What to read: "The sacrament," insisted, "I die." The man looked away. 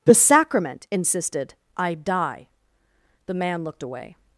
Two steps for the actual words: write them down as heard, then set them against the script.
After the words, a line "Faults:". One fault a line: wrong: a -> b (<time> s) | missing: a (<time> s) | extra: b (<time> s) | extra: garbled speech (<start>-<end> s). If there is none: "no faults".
"The sacrament," insisted, "I die." The man looked away.
Faults:
no faults